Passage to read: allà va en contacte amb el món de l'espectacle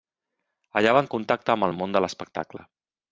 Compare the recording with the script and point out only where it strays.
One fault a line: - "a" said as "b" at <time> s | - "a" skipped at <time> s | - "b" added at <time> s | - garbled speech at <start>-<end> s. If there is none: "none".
none